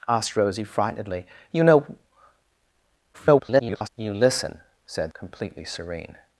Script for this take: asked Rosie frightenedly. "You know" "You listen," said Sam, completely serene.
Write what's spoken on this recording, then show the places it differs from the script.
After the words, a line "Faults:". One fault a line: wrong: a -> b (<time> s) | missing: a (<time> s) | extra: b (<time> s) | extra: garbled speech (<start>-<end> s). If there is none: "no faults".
asked Rosie frightenedly. "You know" [garbled] "You listen," said Completely serene.
Faults:
extra: garbled speech (3.1-3.9 s)
missing: Sam (5.1 s)